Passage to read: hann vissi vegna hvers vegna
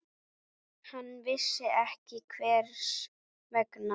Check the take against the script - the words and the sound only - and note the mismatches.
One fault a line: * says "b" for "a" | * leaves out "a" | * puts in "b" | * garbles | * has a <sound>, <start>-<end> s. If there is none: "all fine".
* says "ekki" for "vegna"